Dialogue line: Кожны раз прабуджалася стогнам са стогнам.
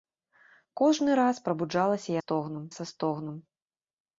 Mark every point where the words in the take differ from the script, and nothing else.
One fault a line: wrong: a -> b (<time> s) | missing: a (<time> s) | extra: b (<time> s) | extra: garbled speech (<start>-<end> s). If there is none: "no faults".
no faults